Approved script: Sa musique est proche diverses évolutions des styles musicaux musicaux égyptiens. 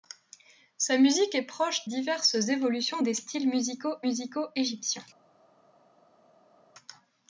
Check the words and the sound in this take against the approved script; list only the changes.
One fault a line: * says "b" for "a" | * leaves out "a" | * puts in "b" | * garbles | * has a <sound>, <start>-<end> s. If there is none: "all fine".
all fine